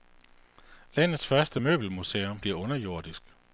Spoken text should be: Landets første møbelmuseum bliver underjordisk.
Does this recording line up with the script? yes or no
yes